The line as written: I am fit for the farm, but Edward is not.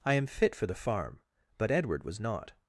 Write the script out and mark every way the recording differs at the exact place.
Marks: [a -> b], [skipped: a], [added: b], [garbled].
I am fit for the farm, but Edward [is -> was] not.